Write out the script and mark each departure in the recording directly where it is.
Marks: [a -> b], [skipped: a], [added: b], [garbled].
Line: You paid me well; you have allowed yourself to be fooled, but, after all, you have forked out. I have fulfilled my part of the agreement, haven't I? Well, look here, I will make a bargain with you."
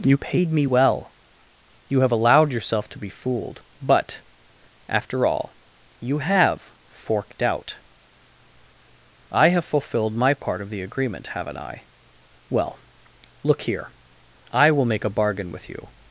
You paid me well; you have allowed yourself to be fooled, but, after all, you have forked out. I have fulfilled my part of the agreement, haven't I? Well, look here, I will make a bargain with you."